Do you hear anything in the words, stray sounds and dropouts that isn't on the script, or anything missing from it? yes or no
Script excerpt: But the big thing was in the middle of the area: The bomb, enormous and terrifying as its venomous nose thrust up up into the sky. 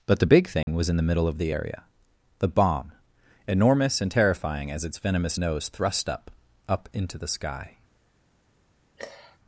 yes